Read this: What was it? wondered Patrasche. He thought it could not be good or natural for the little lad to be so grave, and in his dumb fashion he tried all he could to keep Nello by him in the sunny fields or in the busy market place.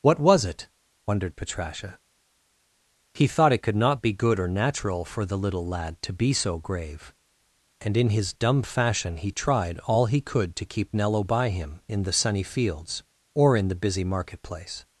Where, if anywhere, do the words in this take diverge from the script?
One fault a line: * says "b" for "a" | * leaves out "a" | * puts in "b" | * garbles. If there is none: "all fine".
all fine